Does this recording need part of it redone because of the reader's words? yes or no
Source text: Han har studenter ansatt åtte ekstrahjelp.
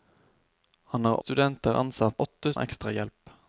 no